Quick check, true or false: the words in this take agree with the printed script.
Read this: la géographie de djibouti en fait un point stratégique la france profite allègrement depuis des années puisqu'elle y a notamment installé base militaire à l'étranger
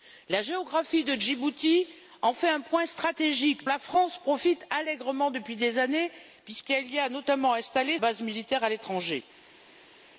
true